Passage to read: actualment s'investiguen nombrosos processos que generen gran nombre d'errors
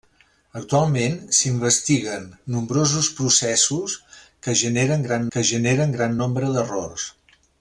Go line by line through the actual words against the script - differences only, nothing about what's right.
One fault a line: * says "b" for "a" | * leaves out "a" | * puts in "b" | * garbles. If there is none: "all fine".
* puts in "que generen gran"